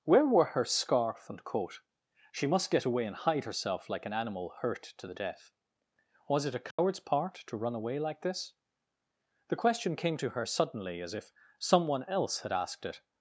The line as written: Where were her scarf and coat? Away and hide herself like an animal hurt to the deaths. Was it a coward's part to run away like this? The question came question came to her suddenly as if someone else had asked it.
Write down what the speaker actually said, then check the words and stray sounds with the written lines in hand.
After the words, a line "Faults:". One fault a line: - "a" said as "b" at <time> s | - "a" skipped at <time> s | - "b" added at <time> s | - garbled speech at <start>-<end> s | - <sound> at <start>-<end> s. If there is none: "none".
Where were her scarf and coat? She must get away and hide herself like an animal hurt to the death. Was it a coward's part to run away like this? The question came to her suddenly as if someone else had asked it.
Faults:
- "She must get" added at 2.3 s
- "deaths" said as "death" at 5.1 s
- dropout at 6.7-6.8 s
- "question came" skipped at 10.2 s